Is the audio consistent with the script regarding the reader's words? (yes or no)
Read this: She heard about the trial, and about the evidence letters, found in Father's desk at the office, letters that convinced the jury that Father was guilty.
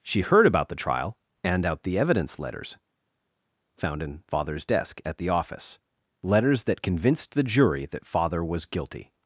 no